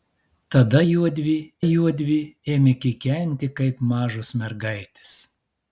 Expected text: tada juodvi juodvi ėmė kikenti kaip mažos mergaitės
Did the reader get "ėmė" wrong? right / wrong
right